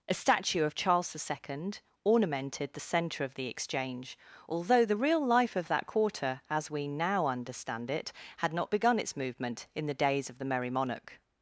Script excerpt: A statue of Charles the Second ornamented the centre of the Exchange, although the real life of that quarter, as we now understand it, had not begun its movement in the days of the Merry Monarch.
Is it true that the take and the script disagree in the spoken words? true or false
false